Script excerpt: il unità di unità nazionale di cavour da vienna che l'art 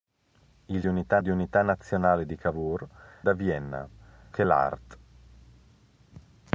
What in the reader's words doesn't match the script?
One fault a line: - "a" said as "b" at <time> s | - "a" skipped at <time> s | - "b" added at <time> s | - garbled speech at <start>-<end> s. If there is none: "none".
none